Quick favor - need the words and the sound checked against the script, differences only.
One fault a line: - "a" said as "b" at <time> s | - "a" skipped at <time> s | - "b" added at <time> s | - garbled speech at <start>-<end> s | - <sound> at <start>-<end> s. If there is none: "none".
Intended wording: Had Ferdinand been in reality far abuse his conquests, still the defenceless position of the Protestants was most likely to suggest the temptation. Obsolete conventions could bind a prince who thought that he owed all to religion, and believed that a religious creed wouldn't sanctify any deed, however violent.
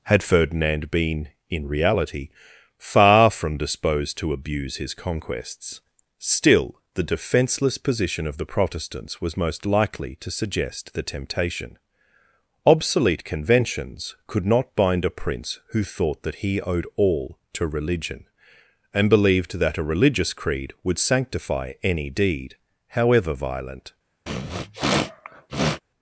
- "from disposed to" added at 3.3 s
- "not" added at 14.4 s
- "wouldn't" said as "would" at 20.8 s
- sniff at 24.3-25.8 s